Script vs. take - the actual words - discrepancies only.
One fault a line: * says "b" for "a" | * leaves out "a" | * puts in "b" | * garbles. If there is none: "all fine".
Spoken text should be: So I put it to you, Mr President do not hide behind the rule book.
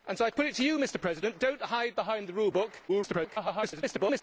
* garbles